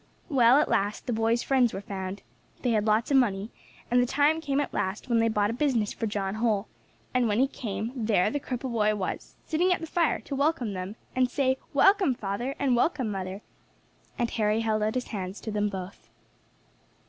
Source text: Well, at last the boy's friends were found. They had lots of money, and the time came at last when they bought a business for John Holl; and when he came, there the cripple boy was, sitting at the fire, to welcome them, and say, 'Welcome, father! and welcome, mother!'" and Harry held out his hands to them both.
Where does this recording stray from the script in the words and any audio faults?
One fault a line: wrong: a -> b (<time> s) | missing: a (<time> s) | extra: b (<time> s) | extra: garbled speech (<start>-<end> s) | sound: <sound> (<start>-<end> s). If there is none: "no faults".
no faults